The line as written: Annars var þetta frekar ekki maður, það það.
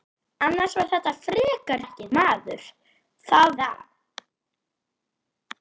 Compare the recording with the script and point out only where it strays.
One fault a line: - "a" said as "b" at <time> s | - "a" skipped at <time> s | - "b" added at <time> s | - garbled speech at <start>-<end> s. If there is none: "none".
none